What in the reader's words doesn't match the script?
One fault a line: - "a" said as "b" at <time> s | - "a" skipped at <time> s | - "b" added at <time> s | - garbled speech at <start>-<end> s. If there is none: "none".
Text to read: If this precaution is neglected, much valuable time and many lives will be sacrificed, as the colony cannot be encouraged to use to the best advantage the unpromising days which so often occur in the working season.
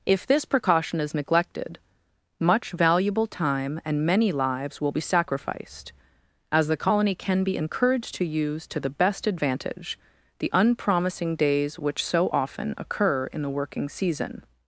- "cannot" said as "can" at 7.1 s